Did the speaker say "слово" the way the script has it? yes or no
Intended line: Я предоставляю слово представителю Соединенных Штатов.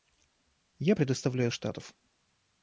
no